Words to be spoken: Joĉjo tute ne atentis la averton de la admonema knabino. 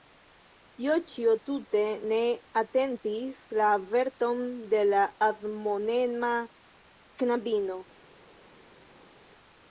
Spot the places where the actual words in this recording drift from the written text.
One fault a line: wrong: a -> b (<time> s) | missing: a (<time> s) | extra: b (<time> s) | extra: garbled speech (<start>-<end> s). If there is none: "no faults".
no faults